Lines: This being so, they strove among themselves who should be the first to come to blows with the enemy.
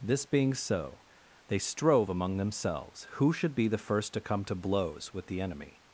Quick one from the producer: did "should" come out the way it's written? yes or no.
yes